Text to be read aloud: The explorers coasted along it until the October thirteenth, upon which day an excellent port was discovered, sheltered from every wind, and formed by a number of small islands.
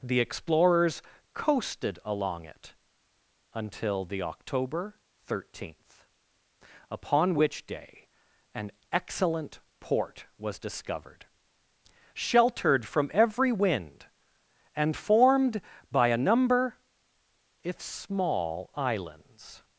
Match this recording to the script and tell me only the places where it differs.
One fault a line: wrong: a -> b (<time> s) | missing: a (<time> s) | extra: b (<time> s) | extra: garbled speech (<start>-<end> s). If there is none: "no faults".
wrong: of -> if (17.6 s)